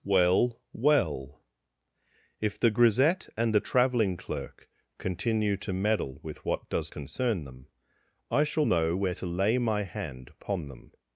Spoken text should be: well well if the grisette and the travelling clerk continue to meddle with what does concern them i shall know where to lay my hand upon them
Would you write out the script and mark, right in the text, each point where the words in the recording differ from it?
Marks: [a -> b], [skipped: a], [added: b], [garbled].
well well if the grisette and the travelling clerk continue to meddle with what does concern them i shall know where to lay my hand upon them